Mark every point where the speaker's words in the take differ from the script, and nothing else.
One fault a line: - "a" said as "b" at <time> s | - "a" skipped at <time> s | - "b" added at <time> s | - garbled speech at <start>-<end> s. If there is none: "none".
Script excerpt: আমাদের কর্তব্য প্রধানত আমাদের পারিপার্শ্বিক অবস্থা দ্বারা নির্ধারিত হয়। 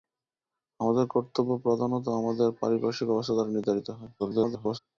- garbled speech at 4.2-4.8 s